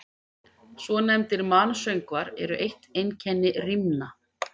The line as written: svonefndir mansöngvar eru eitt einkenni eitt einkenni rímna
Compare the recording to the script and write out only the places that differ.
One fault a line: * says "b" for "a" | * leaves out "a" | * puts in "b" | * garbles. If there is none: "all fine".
* leaves out "eitt einkenni"